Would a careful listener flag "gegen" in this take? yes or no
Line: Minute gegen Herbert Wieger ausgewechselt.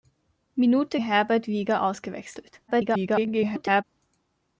yes